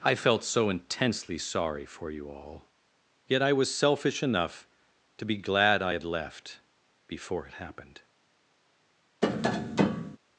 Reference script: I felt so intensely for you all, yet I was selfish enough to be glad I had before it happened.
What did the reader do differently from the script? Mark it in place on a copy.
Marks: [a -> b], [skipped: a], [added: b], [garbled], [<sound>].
I felt so intensely [added: sorry] for you all, yet I was selfish enough to be glad I had [added: left] before it happened. [tap]